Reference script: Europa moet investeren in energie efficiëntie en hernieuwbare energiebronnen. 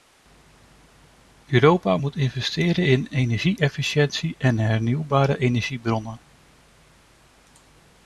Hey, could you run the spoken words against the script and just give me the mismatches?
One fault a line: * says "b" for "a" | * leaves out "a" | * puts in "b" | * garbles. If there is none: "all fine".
all fine